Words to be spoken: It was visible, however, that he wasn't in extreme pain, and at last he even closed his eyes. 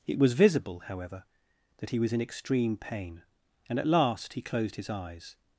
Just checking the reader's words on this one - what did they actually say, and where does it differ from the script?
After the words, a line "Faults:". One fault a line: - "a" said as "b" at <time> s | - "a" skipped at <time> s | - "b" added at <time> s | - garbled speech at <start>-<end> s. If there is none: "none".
It was visible, however, that he was in extreme pain, and at last he closed his eyes.
Faults:
- "wasn't" said as "was" at 2.0 s
- "even" skipped at 4.4 s